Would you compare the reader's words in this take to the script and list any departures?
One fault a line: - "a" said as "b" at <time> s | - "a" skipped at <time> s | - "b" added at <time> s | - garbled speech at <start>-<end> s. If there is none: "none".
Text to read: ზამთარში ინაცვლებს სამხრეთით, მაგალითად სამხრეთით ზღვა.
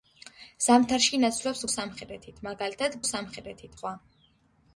none